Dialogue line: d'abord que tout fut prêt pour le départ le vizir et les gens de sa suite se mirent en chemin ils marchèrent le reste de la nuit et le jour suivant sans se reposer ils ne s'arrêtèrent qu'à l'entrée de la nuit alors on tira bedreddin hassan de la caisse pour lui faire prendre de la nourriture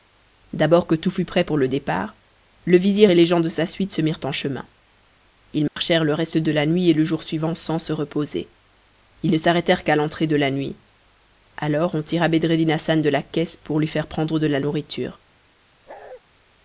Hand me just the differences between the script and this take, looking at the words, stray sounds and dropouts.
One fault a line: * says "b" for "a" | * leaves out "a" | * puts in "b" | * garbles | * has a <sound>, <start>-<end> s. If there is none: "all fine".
* has a dropout, 5.7-5.8 s
* has a bark, 15.9-16.2 s